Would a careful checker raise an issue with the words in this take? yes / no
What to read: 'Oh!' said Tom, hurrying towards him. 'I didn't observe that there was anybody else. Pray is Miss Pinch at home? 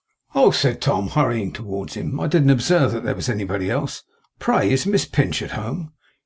no